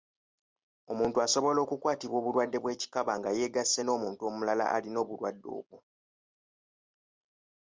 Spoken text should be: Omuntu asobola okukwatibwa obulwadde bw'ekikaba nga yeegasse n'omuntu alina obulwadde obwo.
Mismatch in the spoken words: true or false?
true